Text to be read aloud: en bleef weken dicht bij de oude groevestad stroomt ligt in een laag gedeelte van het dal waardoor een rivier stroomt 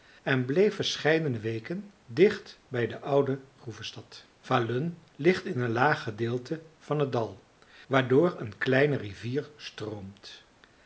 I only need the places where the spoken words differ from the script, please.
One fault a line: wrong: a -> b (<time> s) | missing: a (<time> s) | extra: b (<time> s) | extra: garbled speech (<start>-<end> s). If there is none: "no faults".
extra: verscheidene (0.8 s)
wrong: stroomt -> falun (4.4 s)
extra: kleine (8.6 s)